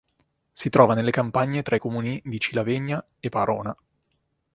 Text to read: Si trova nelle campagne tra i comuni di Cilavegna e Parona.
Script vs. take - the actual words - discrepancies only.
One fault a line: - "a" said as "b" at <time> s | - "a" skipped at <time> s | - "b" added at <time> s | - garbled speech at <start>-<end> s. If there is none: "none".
none